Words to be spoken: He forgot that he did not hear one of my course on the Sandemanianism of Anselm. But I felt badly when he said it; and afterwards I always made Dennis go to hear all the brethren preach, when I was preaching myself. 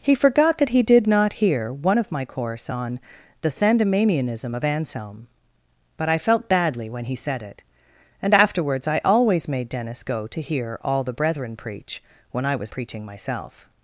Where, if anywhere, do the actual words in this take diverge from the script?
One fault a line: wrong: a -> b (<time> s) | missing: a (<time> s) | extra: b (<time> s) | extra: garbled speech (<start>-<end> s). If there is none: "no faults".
no faults